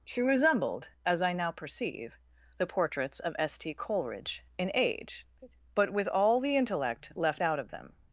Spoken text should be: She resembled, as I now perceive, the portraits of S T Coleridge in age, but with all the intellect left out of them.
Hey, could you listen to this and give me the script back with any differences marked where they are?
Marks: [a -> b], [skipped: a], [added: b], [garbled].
She resembled, as I now perceive, the portraits of S T Coleridge in age, but with all the intellect left out of them.